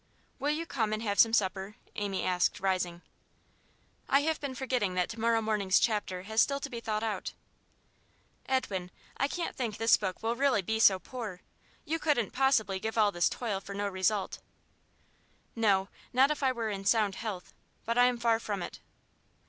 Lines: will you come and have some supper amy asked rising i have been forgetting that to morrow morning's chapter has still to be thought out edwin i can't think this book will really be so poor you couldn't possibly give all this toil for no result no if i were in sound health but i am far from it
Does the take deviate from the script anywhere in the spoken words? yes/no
yes